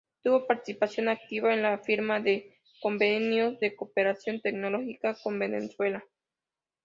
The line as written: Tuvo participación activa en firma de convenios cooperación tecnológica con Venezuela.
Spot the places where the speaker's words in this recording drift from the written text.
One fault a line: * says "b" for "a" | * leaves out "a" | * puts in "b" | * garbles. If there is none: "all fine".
* puts in "la"
* puts in "de"